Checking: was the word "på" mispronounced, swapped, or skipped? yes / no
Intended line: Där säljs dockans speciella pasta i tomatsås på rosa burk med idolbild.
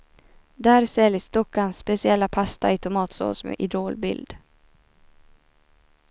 yes